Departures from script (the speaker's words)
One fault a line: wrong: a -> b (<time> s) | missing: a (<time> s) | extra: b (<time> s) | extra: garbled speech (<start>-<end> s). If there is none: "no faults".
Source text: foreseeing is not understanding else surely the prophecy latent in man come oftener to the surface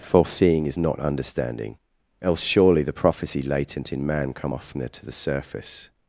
no faults